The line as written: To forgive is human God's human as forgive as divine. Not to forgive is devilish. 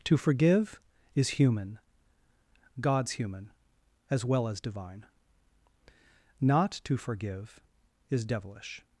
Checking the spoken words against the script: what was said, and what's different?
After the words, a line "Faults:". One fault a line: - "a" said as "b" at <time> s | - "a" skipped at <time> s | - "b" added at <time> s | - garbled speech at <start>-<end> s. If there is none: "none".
To forgive is human God's human as well as divine. Not to forgive is devilish.
Faults:
- "forgive" said as "well" at 4.2 s